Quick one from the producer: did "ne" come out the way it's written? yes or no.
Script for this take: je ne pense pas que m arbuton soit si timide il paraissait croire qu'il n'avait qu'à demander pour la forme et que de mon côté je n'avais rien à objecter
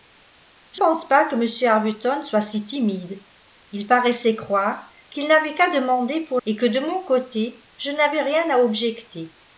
no